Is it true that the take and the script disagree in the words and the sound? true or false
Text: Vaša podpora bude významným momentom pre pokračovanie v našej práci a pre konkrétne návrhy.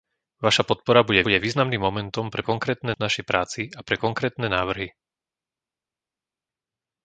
true